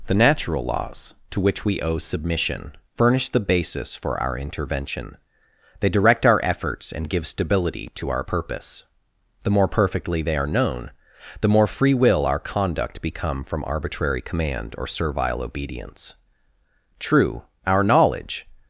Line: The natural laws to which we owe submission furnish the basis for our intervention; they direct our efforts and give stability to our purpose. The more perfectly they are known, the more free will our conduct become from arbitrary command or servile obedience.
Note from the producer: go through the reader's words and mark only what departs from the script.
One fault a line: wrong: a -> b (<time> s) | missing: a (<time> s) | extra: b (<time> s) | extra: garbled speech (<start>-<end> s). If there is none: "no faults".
extra: True our knowledge (17.0 s)